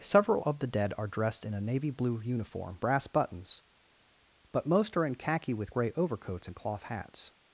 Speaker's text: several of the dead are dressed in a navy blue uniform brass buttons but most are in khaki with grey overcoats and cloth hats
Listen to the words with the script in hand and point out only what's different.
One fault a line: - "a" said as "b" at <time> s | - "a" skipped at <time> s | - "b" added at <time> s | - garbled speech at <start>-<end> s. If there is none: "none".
none